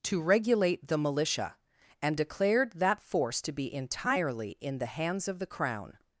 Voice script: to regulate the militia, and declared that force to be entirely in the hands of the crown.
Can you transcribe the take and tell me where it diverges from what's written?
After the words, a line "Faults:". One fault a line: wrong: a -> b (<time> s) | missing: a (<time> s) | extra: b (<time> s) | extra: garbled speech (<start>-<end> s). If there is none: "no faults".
to regulate the militia, and declared that force to be entirely in the hands of the crown.
Faults:
no faults